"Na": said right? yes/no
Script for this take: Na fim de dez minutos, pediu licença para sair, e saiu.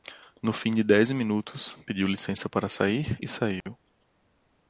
no